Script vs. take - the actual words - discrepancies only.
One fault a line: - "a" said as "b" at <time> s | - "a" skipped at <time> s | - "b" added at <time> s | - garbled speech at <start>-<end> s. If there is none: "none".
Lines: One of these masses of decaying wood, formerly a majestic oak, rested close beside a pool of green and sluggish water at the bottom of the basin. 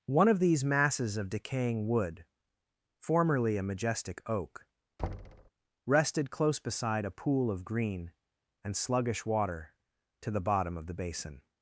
- "at" said as "to" at 10.2 s